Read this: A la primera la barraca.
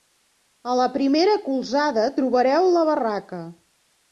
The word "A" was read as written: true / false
true